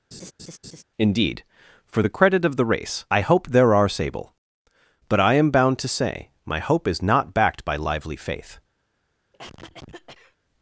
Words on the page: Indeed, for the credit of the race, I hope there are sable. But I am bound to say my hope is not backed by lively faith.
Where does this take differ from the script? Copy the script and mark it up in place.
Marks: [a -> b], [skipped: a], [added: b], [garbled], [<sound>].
[laugh] Indeed, for the credit of the race, I hope there are sable. But I am bound to say my hope is not backed by lively faith. [cough]